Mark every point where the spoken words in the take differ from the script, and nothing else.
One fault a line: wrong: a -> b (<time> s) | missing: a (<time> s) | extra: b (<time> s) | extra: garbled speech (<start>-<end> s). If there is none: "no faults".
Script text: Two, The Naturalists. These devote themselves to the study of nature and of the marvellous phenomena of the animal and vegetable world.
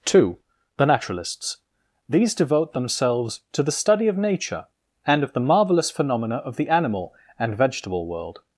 no faults